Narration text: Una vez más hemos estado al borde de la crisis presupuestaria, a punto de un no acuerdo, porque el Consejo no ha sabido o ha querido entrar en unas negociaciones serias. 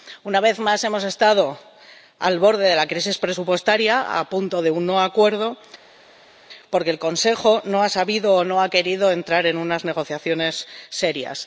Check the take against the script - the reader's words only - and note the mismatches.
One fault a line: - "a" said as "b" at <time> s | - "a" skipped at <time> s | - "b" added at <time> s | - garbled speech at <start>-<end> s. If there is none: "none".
- "no" added at 8.5 s